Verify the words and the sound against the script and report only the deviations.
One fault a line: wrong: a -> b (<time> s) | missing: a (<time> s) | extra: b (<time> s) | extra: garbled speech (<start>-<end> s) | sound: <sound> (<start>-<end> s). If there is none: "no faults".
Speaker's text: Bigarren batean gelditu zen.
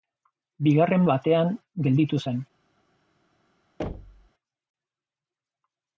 sound: thud (3.8-4.3 s)